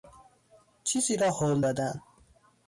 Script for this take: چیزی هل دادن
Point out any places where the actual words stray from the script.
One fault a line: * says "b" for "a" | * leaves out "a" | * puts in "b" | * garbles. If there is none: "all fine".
* puts in "را"